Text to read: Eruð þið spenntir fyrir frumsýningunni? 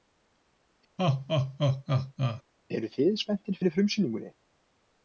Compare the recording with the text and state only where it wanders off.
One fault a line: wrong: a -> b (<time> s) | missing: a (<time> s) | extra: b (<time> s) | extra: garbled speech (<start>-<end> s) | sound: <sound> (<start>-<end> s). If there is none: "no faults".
sound: laugh (1.0-2.4 s)